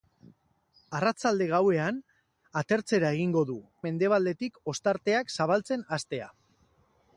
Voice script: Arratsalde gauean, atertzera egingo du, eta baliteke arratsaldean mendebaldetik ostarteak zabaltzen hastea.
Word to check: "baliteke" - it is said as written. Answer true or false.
false